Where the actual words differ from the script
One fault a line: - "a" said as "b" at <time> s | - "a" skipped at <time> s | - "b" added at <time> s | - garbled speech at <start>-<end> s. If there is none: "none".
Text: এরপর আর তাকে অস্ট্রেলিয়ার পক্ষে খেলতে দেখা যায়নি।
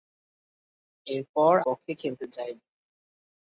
- "আর তাকে অস্ট্রেলিয়ার" skipped at 1.5 s
- "দেখা" skipped at 2.2 s